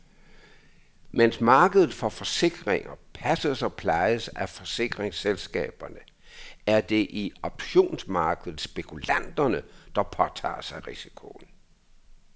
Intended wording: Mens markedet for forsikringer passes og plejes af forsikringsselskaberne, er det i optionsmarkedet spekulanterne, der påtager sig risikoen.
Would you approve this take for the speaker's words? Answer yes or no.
yes